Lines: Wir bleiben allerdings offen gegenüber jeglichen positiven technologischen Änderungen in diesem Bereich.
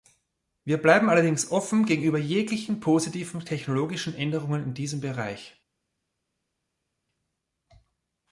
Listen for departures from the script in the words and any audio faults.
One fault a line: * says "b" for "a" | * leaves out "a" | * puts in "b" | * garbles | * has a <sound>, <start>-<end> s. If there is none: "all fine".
all fine